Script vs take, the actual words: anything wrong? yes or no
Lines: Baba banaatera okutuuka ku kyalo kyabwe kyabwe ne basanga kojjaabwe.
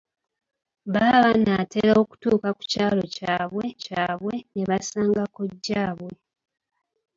no